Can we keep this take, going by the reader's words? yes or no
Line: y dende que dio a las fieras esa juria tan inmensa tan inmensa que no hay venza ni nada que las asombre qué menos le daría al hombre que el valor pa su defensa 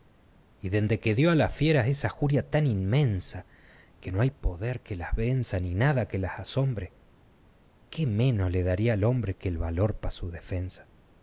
no